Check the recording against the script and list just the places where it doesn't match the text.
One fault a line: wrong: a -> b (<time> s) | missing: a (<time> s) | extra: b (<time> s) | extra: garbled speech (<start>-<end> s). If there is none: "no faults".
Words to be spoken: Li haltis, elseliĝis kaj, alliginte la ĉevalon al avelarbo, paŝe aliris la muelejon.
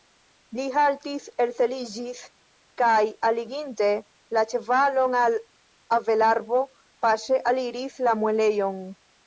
no faults